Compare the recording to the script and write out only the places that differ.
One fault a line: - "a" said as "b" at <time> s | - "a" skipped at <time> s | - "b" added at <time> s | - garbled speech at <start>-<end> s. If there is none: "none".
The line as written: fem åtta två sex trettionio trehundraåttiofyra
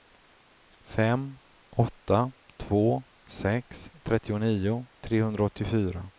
none